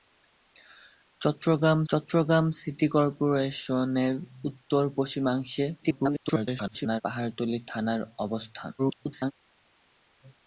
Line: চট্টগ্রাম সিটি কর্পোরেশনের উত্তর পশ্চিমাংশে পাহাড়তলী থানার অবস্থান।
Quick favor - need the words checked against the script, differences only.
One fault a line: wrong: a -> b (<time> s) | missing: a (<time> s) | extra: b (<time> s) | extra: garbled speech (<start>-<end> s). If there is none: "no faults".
extra: চট্টগ্রাম (1.9 s)
extra: garbled speech (5.8-7.0 s)
extra: garbled speech (8.8-9.3 s)